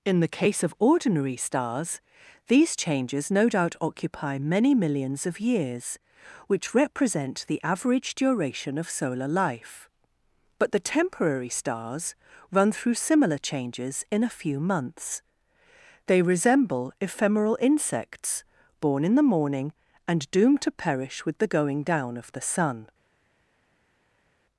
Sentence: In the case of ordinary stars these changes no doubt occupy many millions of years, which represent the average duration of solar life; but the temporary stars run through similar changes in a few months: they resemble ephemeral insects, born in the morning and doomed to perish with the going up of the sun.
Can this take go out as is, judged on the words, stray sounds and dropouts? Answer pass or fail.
fail